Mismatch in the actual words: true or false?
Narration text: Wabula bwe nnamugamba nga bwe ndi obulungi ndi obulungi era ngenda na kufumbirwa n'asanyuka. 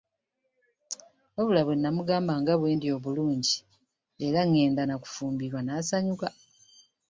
true